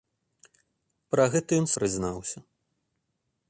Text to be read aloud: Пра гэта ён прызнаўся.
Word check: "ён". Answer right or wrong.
right